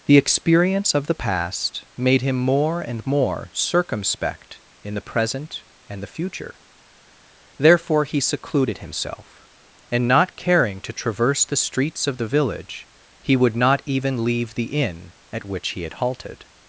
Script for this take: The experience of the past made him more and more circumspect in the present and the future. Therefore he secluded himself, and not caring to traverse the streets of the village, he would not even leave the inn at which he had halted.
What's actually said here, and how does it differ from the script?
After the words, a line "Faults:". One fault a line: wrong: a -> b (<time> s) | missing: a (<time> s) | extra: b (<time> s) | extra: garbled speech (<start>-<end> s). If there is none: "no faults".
The experience of the past made him more and more circumspect in the present and the future. Therefore he secluded himself, and not caring to traverse the streets of the village, he would not even leave the inn at which he had halted.
Faults:
no faults